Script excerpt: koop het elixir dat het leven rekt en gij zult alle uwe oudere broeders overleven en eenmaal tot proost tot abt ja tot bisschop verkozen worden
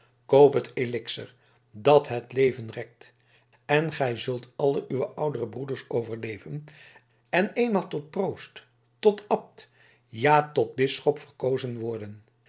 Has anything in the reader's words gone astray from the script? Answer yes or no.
no